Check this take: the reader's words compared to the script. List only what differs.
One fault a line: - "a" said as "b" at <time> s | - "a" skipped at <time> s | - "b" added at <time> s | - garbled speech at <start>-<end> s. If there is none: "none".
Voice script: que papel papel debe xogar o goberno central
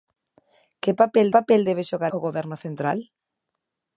none